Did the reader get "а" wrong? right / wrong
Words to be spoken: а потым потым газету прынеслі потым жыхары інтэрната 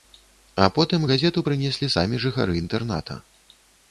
right